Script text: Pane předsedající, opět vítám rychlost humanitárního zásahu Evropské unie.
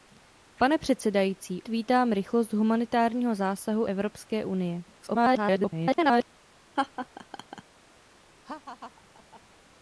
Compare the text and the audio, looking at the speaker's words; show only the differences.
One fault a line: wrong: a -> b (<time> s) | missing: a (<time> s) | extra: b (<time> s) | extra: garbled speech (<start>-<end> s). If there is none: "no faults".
missing: opět (1.6 s)
extra: garbled speech (4.9-6.3 s)